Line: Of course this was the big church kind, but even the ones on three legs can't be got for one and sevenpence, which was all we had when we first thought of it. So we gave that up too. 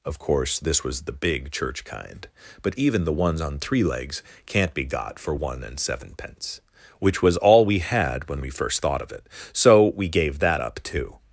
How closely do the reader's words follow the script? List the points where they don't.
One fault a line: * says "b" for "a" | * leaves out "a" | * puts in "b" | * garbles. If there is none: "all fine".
all fine